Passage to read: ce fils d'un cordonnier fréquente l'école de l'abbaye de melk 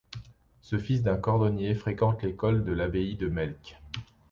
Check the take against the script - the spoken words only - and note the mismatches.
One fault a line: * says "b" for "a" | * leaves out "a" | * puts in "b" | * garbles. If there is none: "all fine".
all fine